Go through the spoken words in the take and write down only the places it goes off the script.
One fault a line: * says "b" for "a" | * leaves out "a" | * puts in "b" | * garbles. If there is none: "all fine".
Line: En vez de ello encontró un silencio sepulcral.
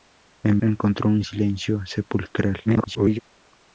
* leaves out "vez de ello"
* garbles